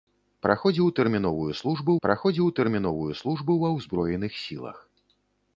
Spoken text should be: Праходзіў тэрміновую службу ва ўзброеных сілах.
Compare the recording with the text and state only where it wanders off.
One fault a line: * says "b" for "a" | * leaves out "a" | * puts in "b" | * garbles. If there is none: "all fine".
* puts in "праходзіў тэрміновую службу"